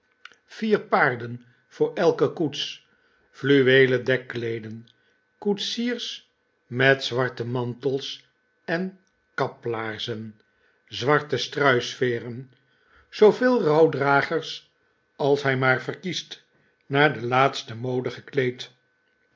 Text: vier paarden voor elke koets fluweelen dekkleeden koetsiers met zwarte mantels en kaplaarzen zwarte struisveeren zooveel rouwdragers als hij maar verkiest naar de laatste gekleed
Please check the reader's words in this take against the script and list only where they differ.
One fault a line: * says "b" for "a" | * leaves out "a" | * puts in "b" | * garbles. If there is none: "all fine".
* puts in "mode"